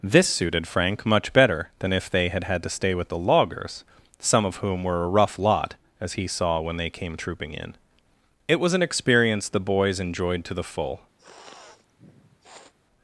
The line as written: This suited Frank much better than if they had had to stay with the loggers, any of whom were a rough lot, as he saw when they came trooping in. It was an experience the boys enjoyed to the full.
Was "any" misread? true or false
true